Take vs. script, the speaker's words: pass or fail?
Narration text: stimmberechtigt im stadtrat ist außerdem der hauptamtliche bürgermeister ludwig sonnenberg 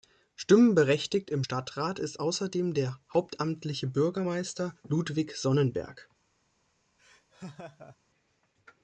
pass